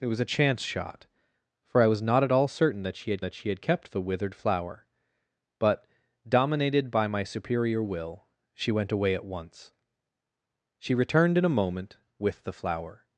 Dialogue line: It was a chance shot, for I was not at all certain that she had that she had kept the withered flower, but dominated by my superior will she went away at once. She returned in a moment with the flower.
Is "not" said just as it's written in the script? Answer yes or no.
yes